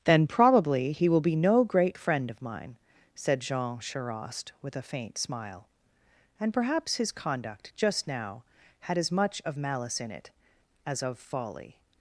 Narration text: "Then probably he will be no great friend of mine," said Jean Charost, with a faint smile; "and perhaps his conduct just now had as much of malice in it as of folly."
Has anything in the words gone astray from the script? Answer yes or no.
no